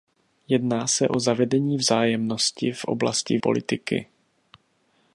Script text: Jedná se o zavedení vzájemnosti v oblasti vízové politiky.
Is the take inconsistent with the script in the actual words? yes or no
yes